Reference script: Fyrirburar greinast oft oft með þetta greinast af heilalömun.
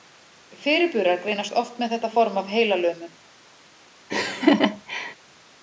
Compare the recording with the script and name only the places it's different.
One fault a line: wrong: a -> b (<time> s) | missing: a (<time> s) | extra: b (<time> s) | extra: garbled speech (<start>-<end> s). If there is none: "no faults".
missing: oft (1.8 s)
wrong: greinast -> form (2.2 s)